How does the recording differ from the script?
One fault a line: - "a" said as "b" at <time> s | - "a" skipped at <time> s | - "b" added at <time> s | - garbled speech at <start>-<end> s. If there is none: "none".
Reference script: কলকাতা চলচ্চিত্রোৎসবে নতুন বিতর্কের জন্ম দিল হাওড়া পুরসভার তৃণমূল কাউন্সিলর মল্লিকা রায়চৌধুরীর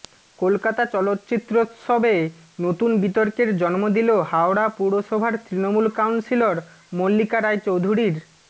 none